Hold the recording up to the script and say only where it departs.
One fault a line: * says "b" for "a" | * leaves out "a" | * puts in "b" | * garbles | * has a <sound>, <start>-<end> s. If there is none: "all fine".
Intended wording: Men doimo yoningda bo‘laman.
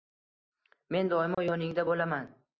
* has a dropout, 1.3-1.4 s